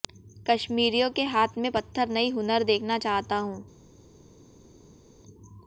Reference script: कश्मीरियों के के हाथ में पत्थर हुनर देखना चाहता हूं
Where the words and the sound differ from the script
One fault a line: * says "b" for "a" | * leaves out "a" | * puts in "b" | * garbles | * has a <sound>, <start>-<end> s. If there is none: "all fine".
* leaves out "के"
* puts in "नहीं"